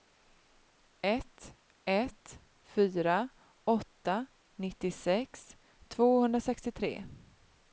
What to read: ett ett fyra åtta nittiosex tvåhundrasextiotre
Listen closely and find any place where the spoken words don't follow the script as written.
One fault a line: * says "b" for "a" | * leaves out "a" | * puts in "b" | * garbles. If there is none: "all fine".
all fine